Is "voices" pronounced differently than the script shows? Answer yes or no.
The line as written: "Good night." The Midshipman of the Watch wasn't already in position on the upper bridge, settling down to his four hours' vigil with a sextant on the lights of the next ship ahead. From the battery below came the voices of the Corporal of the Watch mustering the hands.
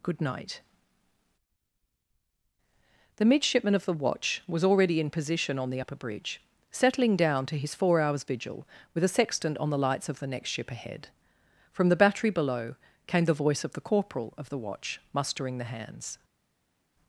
yes